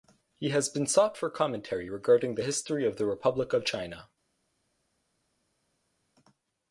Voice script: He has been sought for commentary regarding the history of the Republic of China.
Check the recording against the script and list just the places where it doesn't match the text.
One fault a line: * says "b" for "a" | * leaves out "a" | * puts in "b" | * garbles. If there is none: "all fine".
all fine